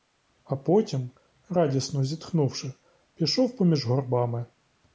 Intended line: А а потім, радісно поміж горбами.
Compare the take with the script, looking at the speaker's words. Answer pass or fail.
fail